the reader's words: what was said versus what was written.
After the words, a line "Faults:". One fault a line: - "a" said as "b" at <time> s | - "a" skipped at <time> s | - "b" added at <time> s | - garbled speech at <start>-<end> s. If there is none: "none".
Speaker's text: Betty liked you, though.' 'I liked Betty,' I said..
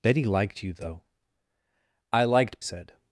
Betty liked you, though.' 'I liked Said..
Faults:
- "Betty I" skipped at 2.6 s